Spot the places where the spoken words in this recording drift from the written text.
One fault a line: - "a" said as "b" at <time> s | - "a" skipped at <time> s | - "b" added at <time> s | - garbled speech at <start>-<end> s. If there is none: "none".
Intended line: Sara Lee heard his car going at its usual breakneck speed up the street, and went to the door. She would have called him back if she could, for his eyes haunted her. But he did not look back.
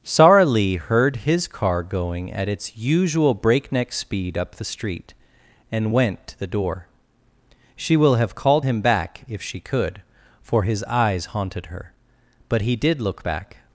- "would" said as "will" at 8.0 s
- "not" skipped at 13.0 s